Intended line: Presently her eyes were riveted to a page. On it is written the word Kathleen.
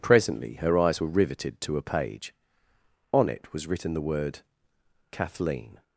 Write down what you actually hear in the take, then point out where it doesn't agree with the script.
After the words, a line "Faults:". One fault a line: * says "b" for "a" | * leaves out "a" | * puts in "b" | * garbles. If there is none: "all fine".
Presently her eyes were riveted to a page. On it was written the word Kathleen.
Faults:
* says "was" for "is"